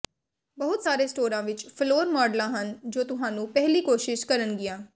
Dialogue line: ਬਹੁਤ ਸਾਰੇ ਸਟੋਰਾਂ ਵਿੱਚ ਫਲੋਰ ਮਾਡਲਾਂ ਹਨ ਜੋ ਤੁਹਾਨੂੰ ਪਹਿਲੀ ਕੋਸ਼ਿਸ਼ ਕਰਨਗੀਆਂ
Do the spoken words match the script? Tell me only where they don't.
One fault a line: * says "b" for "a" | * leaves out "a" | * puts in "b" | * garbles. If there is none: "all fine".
all fine